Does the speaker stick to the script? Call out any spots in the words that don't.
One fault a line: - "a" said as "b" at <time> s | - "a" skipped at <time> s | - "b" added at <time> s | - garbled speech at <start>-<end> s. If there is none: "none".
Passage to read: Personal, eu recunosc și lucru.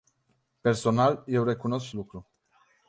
none